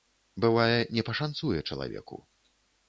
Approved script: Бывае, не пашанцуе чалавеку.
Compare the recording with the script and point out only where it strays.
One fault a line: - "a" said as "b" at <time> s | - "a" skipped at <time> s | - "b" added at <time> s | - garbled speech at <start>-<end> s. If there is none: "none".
none